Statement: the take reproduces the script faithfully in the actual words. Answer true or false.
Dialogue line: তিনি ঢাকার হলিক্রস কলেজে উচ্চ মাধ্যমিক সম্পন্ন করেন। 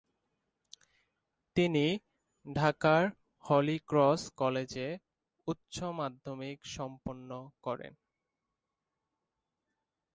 true